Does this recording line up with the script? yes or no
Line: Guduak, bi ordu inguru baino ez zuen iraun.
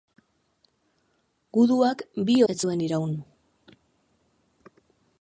no